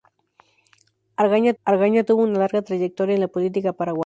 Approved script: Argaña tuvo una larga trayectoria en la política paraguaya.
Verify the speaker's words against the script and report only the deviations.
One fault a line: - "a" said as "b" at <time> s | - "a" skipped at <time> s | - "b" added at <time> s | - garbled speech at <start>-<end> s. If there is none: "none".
- "argaña" added at 1.6 s